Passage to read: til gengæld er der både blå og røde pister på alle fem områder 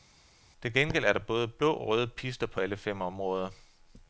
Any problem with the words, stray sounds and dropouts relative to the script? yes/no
no